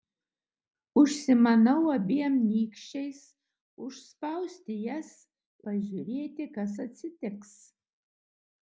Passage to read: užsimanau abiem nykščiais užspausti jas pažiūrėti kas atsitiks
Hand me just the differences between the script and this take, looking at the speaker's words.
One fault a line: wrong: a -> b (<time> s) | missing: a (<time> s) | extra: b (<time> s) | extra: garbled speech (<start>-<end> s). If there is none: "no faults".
no faults